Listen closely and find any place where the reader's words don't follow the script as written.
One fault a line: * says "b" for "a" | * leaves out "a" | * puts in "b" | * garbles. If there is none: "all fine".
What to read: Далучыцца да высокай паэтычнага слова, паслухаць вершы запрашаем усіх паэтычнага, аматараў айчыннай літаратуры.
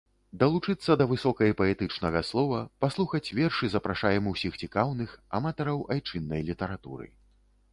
* says "цікаўных" for "паэтычнага"